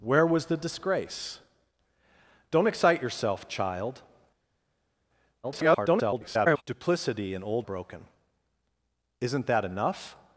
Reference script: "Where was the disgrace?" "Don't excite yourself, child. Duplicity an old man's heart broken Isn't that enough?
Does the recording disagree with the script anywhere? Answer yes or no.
yes